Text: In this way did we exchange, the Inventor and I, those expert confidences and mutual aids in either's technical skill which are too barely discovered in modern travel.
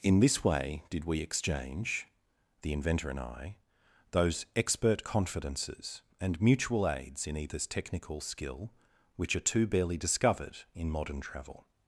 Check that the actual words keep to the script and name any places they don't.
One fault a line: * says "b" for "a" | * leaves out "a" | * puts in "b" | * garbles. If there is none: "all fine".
all fine